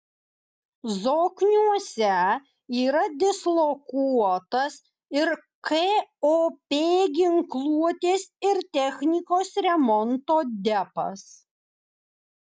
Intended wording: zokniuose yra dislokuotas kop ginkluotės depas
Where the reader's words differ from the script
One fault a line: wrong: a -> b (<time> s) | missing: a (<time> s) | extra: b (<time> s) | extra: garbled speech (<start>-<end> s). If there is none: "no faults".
extra: ir (5.2 s)
extra: ir technikos remonto (8.5 s)